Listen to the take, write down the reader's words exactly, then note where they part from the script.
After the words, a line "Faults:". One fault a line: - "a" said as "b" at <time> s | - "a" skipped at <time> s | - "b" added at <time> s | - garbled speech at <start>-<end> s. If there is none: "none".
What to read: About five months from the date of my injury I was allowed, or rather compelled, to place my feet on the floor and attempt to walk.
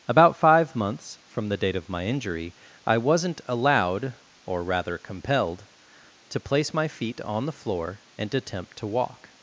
About five months from the date of my injury I wasn't allowed, or rather compelled, to place my feet on the floor and attempt to walk.
Faults:
- "was" said as "wasn't" at 3.0 s